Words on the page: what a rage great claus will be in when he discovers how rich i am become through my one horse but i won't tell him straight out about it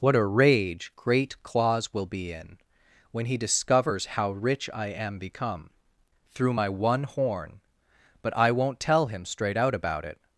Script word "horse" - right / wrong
wrong